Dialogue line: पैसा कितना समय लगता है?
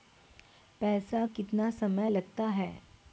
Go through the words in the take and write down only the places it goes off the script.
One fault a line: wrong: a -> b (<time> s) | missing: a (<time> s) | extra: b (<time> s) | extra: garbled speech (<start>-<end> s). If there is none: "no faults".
no faults